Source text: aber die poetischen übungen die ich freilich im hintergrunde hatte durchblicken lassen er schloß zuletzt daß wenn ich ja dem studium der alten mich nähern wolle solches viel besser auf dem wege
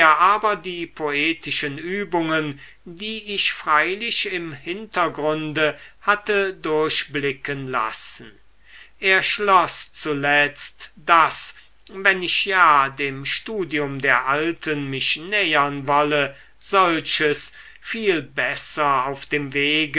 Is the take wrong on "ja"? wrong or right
right